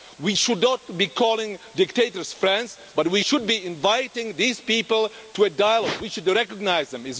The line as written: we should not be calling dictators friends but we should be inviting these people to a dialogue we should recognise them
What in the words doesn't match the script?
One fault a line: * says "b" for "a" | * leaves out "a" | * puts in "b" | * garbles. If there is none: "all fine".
all fine